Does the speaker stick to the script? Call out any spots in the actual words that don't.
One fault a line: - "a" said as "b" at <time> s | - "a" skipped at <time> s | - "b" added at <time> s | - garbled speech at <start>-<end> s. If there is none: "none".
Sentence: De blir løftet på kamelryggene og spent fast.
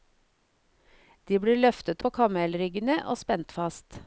none